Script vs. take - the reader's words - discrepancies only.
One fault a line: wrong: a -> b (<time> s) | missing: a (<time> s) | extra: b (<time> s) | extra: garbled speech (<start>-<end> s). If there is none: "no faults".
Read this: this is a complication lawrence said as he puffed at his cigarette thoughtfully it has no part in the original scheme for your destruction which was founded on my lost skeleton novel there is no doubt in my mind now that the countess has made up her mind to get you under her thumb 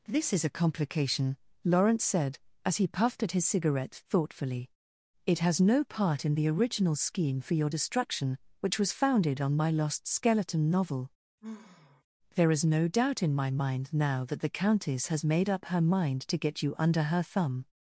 no faults